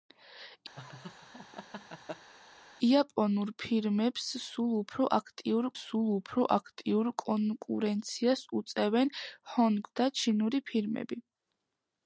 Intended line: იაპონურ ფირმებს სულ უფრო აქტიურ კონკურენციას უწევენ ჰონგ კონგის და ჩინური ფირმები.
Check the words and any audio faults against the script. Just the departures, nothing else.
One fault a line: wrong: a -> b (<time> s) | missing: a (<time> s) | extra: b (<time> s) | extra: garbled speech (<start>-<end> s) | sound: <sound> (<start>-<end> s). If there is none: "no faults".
sound: laugh (0.8-2.3 s)
extra: სულ უფრო აქტიურ (5.8 s)
missing: კონგის (9.9 s)